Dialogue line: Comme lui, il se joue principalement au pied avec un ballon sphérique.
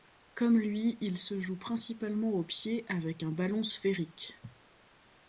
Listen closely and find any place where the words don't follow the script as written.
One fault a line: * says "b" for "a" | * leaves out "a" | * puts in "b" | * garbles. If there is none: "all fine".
all fine